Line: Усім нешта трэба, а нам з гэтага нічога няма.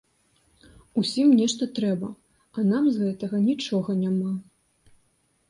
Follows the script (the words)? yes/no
yes